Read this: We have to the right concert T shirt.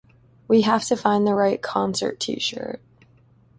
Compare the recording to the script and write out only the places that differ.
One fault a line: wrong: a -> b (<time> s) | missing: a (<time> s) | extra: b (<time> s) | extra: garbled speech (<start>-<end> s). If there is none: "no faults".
extra: find (1.0 s)